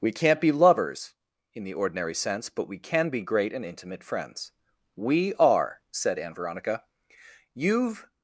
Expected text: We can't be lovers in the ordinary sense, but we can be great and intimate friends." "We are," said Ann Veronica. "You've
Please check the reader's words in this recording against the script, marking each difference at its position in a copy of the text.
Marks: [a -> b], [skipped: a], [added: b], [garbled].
We can't be lovers in the ordinary sense, but we can be great and intimate friends." "We are," said Ann Veronica. "You've